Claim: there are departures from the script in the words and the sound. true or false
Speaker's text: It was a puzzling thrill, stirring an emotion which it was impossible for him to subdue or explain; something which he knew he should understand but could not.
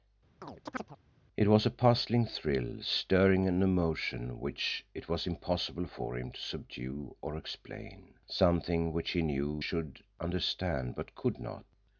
true